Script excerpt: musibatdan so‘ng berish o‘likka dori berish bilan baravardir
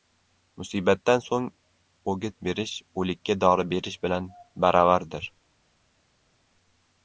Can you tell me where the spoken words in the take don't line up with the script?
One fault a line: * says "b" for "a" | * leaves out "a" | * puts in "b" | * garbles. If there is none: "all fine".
* puts in "o‘git"